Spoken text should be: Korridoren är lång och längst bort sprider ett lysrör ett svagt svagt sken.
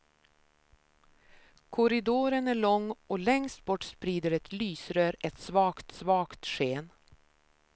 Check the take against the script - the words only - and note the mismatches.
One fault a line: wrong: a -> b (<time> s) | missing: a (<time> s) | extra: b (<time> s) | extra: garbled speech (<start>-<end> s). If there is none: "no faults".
no faults